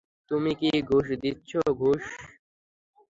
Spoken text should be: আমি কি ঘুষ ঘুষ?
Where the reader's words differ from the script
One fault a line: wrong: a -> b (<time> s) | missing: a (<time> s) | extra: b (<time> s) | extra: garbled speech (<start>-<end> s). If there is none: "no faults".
wrong: আমি -> তুমি (0.3 s)
extra: দিচ্ছ (1.2 s)